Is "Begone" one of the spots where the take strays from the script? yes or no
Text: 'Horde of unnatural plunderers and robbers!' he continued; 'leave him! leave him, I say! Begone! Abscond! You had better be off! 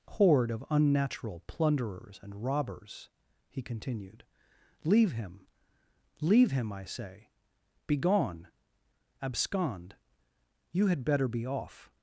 no